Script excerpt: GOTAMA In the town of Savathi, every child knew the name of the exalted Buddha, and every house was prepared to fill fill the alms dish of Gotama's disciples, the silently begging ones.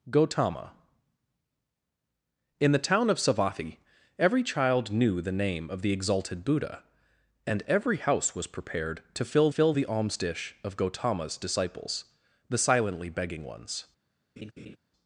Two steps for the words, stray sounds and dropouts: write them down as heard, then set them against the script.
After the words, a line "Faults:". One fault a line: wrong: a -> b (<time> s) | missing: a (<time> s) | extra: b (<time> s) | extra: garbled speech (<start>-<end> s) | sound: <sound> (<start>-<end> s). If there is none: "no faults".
GOTAMA In the town of Savathi, every child knew the name of the exalted Buddha, and every house was prepared to fill fill the alms dish of Gotama's disciples, the silently begging ones.
Faults:
sound: laugh (14.4-14.8 s)